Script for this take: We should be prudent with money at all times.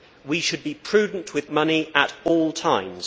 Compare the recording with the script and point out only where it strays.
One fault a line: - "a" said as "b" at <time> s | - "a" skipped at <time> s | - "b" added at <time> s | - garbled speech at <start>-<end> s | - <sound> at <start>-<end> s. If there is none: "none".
none